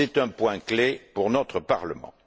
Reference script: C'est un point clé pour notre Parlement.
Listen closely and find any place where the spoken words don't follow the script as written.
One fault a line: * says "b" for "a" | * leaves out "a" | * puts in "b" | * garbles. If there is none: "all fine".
all fine